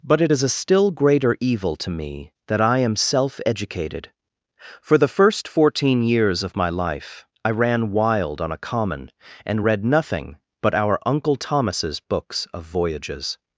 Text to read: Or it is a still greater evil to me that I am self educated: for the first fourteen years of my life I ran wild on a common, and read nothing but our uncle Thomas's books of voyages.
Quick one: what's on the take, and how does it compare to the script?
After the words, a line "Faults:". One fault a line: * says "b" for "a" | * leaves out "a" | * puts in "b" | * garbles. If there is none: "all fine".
But it is a still greater evil to me that I am self educated: for the first fourteen years of my life I ran wild on a common, and read nothing but our uncle Thomas's books of voyages.
Faults:
* says "But" for "Or"